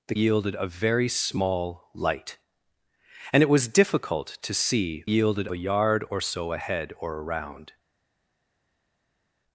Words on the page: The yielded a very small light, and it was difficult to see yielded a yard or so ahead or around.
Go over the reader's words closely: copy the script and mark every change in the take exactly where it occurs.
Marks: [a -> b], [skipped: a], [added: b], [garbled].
The yielded a very small light, and it was difficult to see yielded a yard or so ahead or around.